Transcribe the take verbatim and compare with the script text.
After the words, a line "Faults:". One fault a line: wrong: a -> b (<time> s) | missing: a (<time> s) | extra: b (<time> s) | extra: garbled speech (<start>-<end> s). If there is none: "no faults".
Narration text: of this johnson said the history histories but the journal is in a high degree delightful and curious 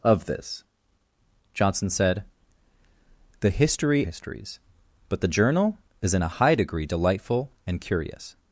of this johnson said the history histories but the journal is in a high degree delightful and curious
Faults:
no faults